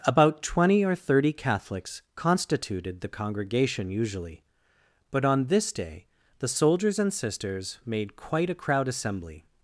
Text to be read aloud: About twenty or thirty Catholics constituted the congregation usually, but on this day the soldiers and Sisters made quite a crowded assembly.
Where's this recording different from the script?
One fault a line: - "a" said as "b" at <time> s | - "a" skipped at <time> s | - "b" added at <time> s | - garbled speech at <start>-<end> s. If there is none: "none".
- "crowded" said as "crowd" at 8.6 s